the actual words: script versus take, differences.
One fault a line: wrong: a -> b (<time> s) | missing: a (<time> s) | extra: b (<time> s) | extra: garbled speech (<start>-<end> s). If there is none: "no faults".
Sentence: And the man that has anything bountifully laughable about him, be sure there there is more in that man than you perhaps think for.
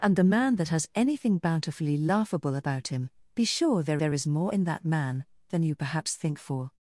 no faults